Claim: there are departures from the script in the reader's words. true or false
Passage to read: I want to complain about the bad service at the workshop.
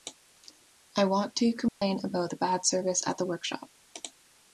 false